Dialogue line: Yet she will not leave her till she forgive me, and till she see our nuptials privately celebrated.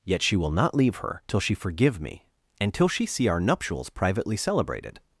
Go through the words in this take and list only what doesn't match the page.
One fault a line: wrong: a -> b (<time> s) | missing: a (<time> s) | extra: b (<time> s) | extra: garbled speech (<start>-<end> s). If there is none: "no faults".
no faults